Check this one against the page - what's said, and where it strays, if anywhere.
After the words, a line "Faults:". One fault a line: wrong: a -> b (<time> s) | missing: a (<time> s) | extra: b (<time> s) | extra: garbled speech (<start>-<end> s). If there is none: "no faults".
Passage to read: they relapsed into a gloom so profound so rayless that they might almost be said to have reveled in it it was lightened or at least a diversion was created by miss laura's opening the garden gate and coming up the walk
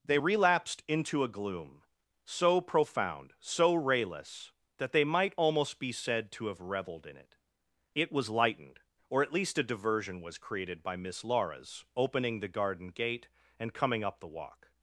they relapsed into a gloom so profound so rayless that they might almost be said to have reveled in it it was lightened or at least a diversion was created by miss laura's opening the garden gate and coming up the walk
Faults:
no faults